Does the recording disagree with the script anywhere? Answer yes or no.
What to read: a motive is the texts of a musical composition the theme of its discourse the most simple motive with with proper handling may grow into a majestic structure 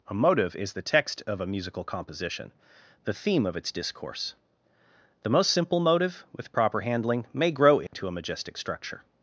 yes